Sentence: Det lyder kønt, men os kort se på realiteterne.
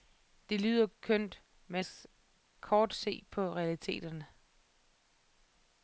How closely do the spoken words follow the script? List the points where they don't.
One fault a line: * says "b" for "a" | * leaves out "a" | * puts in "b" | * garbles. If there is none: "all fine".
all fine